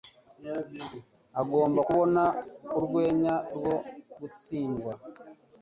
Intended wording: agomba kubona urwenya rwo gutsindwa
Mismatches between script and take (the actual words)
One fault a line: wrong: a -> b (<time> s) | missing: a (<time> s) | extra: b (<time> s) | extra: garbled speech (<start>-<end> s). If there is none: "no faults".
no faults